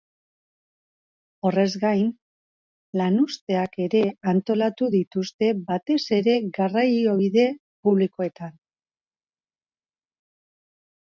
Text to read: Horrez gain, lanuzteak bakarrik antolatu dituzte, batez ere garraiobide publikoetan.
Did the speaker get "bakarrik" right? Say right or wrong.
wrong